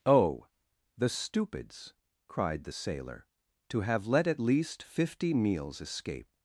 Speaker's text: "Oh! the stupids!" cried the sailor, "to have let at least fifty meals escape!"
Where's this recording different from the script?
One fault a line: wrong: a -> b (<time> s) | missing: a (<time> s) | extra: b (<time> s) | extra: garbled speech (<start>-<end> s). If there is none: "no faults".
no faults